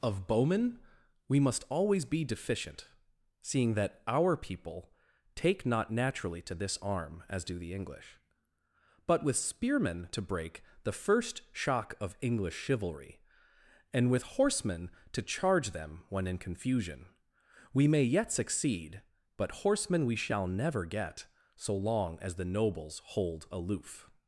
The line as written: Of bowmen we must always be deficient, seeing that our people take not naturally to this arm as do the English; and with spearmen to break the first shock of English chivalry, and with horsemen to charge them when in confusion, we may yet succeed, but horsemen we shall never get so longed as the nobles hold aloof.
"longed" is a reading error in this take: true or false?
true